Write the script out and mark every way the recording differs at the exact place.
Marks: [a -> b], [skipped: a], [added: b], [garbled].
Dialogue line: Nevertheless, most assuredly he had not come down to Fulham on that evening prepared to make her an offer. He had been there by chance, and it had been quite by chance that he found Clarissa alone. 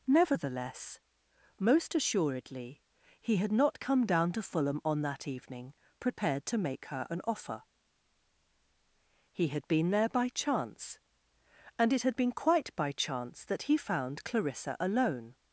Nevertheless, most assuredly he had not come down to Fulham on that evening prepared to make her an offer. He had been there by chance, and it had been quite by chance that he found Clarissa alone.